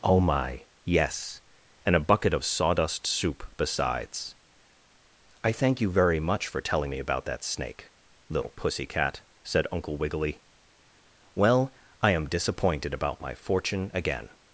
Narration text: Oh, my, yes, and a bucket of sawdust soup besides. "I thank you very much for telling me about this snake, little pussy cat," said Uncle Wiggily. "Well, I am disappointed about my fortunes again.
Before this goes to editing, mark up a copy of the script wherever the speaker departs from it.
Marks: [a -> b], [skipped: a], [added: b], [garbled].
Oh, my, yes, and a bucket of sawdust soup besides. "I thank you very much for telling me about [this -> that] snake, little pussy cat," said Uncle Wiggily. "Well, I am disappointed about my [fortunes -> fortune] again.